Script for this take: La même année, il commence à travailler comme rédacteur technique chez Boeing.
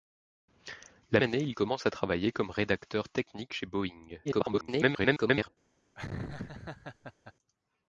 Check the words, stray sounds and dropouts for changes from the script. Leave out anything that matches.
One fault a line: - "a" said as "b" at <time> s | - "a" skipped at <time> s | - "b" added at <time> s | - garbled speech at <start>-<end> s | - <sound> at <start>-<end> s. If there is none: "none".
- "même" skipped at 1.2 s
- garbled speech at 4.2-5.5 s
- laugh at 6.0-7.3 s